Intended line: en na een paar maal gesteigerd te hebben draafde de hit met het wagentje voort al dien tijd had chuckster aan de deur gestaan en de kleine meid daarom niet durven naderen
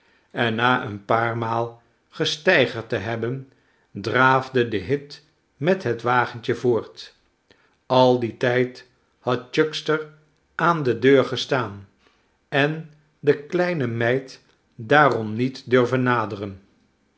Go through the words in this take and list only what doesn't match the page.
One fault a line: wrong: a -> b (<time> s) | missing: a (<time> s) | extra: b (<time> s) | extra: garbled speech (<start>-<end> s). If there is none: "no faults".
no faults